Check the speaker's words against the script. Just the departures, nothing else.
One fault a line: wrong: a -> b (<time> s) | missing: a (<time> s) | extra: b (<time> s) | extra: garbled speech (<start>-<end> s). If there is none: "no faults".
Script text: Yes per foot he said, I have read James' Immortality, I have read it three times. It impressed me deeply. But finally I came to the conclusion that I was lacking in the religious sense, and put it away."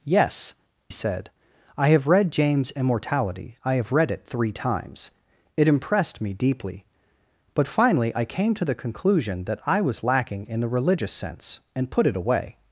missing: per foot he (0.6 s)